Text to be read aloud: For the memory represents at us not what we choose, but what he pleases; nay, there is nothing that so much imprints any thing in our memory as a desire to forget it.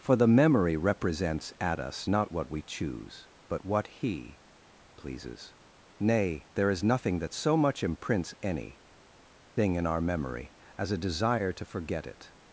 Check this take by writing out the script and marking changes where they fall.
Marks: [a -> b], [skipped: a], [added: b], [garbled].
For the memory represents at us not what we choose, but what he pleases; nay, there is nothing that so much imprints any thing in our memory as a desire to forget it.